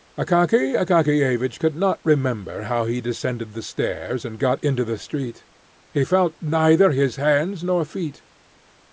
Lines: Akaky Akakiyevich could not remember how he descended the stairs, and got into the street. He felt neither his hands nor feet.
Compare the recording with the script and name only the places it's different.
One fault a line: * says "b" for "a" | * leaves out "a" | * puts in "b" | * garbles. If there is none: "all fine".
all fine